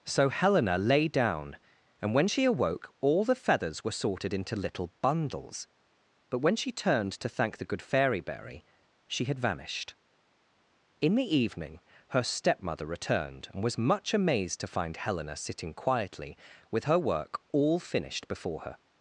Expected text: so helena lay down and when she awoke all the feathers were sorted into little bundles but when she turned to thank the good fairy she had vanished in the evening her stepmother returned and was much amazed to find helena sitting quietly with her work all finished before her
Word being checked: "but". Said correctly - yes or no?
yes